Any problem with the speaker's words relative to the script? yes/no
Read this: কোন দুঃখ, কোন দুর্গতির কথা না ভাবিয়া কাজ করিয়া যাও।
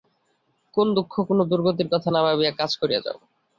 no